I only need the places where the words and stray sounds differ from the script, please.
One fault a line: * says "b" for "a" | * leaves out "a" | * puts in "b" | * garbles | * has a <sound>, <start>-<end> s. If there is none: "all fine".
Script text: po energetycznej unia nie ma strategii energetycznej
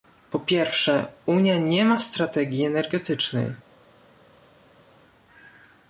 * says "pierwsze" for "energetycznej"